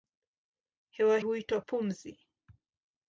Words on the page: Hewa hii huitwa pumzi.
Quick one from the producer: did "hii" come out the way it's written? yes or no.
no